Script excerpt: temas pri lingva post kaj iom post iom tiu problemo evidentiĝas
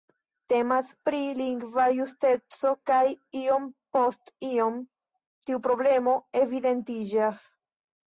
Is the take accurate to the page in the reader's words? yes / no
no